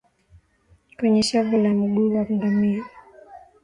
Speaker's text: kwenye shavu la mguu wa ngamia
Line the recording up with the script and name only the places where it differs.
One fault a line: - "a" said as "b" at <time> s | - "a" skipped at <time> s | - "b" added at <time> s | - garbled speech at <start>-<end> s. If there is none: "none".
none